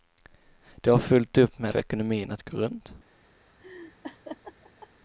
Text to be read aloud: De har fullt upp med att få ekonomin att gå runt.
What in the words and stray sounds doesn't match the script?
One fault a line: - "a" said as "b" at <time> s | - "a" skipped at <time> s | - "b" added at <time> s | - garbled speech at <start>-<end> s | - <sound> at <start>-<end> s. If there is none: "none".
- "att" skipped at 1.7 s
- laugh at 3.6-4.9 s